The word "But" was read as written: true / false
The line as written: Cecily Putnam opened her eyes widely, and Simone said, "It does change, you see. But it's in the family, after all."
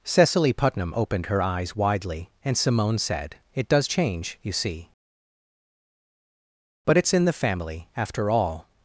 true